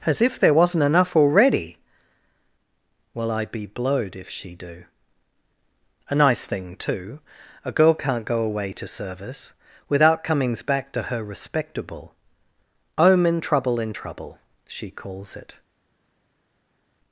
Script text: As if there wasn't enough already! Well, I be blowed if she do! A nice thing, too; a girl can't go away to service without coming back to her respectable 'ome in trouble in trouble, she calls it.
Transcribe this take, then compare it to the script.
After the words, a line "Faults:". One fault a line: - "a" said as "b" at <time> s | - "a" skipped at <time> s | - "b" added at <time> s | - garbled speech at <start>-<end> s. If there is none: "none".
As if there wasn't enough already! Well, I be blowed if she do! A nice thing, too; a girl can't go away to service without comings back to her respectable 'ome in trouble in trouble, she calls it.
Faults:
- "coming" said as "comings" at 10.2 s